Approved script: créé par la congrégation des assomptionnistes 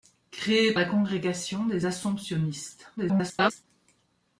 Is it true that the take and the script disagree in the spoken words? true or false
true